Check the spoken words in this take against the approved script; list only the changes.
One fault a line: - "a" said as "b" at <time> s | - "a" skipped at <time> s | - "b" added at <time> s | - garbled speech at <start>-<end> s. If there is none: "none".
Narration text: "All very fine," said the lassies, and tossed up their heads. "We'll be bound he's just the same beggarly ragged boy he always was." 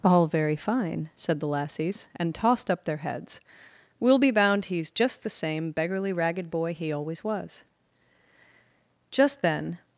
- "Just then" added at 9.1 s